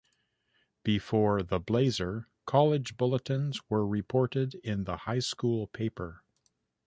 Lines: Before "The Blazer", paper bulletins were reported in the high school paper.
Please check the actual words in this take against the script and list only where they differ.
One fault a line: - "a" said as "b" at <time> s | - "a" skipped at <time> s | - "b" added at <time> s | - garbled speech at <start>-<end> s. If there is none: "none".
- "paper" said as "college" at 2.5 s